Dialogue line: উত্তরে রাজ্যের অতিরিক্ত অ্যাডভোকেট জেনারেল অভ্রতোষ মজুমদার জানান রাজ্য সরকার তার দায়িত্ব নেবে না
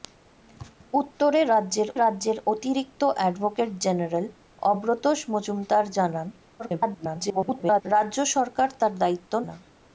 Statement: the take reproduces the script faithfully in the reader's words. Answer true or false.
false